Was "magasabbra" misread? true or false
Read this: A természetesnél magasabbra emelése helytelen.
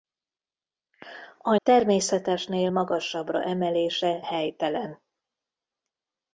false